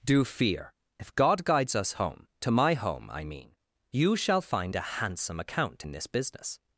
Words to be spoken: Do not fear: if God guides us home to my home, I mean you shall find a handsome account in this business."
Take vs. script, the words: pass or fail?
fail